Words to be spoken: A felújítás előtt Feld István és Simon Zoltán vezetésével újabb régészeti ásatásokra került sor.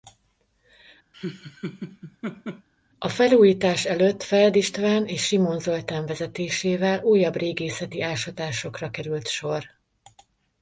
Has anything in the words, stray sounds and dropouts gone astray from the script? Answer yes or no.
yes